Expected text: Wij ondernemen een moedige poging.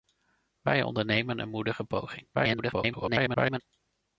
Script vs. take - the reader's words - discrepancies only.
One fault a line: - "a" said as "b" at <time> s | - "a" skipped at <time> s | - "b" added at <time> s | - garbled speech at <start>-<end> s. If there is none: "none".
- garbled speech at 2.3-3.6 s